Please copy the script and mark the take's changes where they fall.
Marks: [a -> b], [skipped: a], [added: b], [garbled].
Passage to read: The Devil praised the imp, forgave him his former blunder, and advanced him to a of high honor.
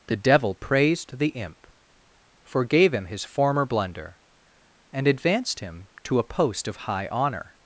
The Devil praised the imp, forgave him his former blunder, and advanced him to a [added: post] of high honor.